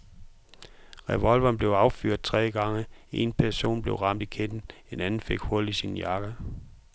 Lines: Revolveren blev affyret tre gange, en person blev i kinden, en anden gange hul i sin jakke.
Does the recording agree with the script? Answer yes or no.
no